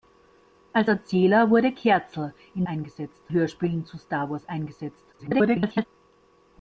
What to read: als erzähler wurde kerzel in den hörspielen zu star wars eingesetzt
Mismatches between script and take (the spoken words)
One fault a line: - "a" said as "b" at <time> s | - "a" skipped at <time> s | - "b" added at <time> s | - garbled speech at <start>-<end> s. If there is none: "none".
- "den" said as "eingesetzt" at 2.7 s
- garbled speech at 5.1-5.9 s